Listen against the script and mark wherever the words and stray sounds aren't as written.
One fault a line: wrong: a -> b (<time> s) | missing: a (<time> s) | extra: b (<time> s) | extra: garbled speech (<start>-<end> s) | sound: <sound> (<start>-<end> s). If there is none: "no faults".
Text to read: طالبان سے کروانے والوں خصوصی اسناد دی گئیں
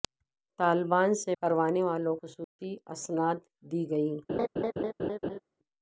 sound: dropout (2.4-2.6 s)
sound: laugh (4.3-5.4 s)